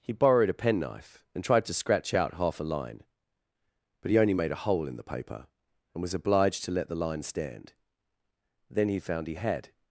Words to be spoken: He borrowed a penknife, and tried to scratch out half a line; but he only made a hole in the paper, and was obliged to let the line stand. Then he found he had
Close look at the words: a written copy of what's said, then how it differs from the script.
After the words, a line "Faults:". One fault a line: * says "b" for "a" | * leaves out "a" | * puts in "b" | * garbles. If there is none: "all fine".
He borrowed a penknife, and tried to scratch out half a line; but he only made a hole in the paper, and was obliged to let the line stand. Then he found he had
Faults:
all fine